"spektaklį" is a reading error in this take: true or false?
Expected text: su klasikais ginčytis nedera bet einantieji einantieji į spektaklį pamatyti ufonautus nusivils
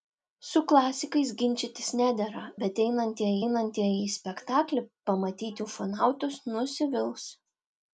false